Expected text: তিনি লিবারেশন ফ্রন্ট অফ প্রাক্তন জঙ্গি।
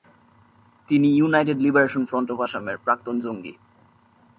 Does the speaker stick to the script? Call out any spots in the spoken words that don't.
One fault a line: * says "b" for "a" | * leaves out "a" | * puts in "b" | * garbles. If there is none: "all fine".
* puts in "ইউনাইটেড"
* puts in "আসামের"